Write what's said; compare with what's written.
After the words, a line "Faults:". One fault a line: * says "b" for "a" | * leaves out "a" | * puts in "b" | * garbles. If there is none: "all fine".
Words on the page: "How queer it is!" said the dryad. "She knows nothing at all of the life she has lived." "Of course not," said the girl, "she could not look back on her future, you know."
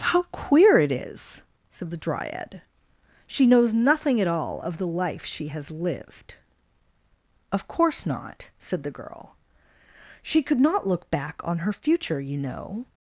"How queer it is!" said the dryad. "She knows nothing at all of the life she has lived." "Of course not," said the girl, "she could not look back on her future, you know."
Faults:
all fine